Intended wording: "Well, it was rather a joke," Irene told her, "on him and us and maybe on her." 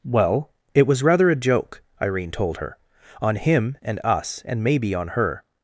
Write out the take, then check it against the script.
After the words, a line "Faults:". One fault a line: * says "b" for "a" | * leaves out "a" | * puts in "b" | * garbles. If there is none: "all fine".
"Well, it was rather a joke," Irene told her, "on him and us and maybe on her."
Faults:
all fine